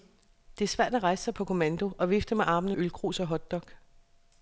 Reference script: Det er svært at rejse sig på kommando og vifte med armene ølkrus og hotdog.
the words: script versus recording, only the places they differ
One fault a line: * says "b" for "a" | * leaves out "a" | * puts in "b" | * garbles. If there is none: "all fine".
all fine